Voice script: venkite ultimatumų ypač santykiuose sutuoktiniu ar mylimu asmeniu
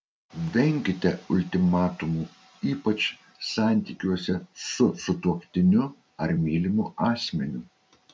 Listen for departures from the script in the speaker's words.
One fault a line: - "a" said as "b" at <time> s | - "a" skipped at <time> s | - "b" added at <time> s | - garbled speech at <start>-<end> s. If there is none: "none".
- "su" added at 4.7 s